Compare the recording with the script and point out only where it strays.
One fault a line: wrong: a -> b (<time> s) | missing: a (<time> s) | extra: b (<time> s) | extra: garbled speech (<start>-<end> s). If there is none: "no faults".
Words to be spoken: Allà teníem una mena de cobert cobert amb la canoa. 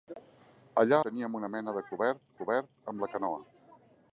no faults